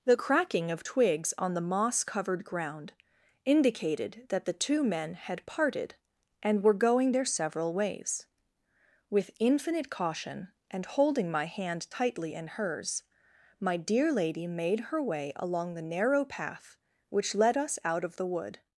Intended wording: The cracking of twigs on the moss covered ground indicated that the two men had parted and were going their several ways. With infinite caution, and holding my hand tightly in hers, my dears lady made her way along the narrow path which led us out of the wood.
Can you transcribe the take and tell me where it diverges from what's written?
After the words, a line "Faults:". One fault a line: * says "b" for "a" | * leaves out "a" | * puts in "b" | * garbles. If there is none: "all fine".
The cracking of twigs on the moss covered ground indicated that the two men had parted and were going their several ways. With infinite caution, and holding my hand tightly in hers, my dear lady made her way along the narrow path which led us out of the wood.
Faults:
* says "dear" for "dears"